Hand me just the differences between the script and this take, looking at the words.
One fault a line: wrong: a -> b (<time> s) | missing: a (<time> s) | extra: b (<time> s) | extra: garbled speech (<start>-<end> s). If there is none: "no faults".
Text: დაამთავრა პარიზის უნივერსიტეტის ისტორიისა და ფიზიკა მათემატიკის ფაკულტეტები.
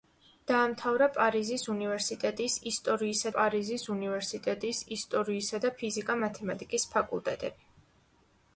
extra: პარიზის უნივერსიტეტის ისტორიისა (3.4 s)